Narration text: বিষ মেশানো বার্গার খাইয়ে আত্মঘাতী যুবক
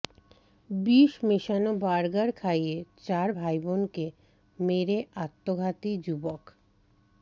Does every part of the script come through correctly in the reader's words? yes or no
no